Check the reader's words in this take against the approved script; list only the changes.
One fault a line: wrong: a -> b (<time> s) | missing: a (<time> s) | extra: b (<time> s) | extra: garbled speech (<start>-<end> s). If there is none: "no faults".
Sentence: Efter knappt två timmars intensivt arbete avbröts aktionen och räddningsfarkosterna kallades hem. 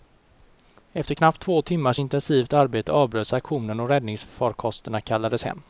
no faults